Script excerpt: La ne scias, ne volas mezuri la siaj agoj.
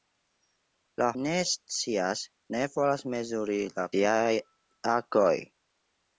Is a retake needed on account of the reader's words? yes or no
no